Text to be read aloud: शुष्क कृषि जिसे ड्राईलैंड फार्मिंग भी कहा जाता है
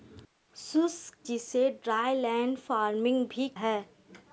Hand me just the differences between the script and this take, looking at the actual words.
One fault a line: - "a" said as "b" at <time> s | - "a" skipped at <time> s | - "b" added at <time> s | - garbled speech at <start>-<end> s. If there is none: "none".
- "कृषि" skipped at 1.2 s
- "कहा जाता" skipped at 3.5 s